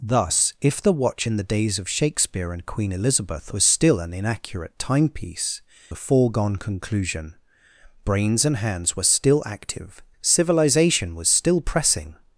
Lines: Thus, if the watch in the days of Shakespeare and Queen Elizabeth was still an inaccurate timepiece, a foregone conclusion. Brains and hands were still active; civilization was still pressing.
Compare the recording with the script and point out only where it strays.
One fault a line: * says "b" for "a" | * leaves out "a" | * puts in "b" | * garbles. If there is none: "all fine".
all fine